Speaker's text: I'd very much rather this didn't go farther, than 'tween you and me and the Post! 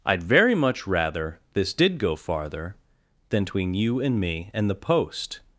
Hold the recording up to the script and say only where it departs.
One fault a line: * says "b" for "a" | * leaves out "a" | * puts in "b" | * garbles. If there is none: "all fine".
* says "did" for "didn't"